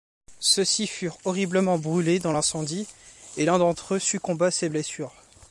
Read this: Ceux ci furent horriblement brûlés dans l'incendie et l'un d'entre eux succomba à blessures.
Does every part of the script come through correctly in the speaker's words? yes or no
no